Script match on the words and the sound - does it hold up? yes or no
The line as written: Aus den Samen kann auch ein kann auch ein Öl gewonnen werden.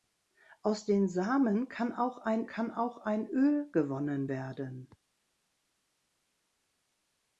yes